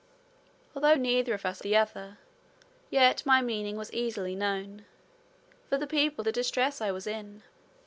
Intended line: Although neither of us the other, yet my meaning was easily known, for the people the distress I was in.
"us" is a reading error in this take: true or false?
false